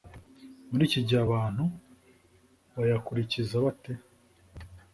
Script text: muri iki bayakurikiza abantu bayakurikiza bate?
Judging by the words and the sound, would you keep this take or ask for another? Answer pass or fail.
fail